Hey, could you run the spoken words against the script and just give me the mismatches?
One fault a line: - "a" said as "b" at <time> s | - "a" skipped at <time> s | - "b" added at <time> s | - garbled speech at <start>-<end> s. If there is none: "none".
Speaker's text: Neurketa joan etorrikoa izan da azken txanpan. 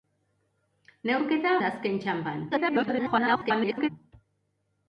- "joan etorrikoa izan" skipped at 1.5 s
- garbled speech at 2.5-3.9 s